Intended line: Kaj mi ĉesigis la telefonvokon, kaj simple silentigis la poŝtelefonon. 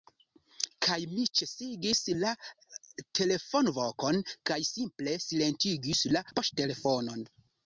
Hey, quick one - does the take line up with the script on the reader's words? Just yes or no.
yes